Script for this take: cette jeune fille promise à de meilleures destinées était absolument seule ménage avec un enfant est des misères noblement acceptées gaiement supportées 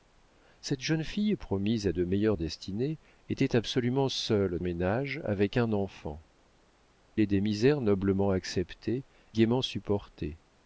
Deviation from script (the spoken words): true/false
false